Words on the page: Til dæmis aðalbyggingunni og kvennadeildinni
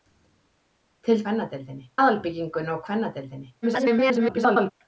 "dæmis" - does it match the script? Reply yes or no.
no